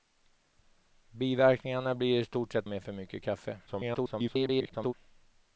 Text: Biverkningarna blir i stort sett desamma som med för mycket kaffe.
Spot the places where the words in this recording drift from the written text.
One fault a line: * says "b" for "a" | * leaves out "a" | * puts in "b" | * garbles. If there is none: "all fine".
* leaves out "desamma som"
* garbles